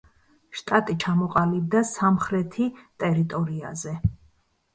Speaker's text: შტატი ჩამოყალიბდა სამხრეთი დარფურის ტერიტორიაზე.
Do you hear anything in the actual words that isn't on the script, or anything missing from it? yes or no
yes